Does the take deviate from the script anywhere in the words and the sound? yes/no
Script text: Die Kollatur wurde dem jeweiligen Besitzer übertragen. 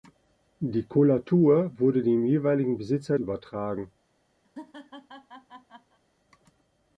yes